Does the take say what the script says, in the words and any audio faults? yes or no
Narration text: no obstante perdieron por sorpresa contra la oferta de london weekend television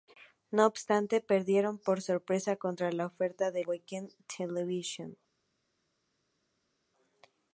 no